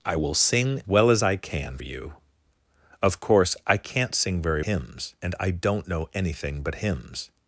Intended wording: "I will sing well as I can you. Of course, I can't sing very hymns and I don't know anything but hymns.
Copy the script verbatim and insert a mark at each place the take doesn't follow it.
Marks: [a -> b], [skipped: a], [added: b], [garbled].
"I will sing well as I can you. Of course, I can't sing very hymns and I don't know anything but hymns.